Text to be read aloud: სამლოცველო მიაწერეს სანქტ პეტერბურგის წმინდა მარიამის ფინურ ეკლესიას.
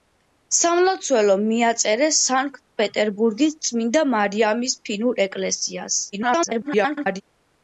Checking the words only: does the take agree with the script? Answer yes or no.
no